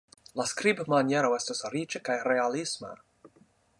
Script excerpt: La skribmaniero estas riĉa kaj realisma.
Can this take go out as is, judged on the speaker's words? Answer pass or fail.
pass